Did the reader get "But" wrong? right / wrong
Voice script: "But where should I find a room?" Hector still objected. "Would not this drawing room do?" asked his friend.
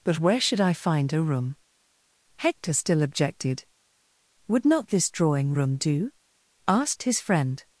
right